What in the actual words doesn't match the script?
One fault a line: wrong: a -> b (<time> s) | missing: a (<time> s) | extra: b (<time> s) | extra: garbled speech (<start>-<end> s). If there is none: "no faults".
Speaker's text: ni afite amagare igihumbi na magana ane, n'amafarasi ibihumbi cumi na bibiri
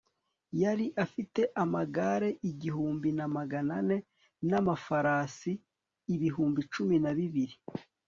wrong: ni -> yari (0.6 s)